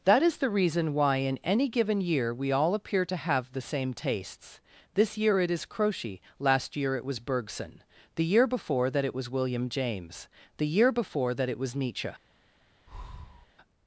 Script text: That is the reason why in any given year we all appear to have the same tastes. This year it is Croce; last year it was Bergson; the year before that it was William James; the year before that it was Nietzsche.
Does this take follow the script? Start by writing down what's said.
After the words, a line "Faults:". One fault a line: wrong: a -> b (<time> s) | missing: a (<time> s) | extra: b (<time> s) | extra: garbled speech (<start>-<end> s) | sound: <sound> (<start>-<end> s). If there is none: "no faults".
That is the reason why in any given year we all appear to have the same tastes. This year it is Croce; last year it was Bergson; the year before that it was William James; the year before that it was Nietzsche.
Faults:
sound: breath (12.9-13.5 s)